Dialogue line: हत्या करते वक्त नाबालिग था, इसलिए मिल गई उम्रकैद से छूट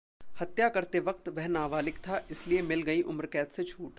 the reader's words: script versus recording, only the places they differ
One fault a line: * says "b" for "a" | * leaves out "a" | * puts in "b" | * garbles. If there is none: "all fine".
* puts in "वह"